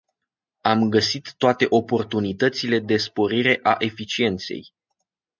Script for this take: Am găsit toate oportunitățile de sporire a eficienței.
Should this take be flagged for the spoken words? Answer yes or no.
no